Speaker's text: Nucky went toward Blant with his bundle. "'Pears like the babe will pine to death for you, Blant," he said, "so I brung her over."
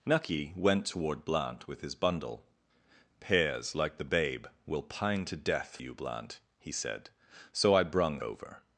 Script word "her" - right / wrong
wrong